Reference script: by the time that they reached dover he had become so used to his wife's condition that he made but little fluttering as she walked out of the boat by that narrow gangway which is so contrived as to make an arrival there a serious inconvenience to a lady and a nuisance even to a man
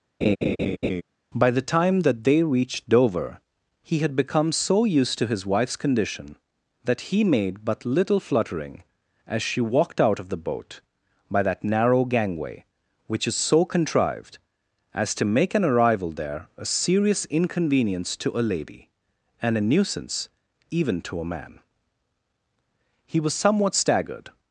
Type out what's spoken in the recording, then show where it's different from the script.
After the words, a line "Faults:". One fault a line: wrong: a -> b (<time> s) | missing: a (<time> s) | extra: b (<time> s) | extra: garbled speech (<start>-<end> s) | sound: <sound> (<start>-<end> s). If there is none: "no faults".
by the time that they reached dover he had become so used to his wife's condition that he made but little fluttering as she walked out of the boat by that narrow gangway which is so contrived as to make an arrival there a serious inconvenience to a lady and a nuisance even to a man he was somewhat staggered
Faults:
sound: laugh (0.2-1.0 s)
extra: he was somewhat staggered (23.1 s)